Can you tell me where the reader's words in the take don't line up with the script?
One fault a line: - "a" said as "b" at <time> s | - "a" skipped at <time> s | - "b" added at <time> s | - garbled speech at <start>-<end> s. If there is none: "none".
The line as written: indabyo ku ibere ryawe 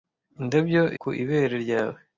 none